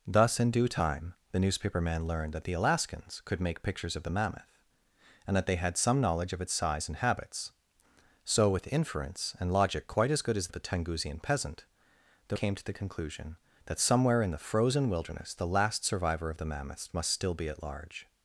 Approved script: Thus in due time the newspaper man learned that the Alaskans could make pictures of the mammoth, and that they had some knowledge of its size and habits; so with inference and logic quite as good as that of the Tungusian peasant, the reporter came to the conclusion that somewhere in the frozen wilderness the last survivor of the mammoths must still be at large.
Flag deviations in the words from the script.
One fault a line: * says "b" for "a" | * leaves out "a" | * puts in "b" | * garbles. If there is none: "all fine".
* leaves out "that"
* leaves out "reporter"